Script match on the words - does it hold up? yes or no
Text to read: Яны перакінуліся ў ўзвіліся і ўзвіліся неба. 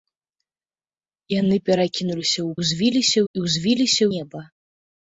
yes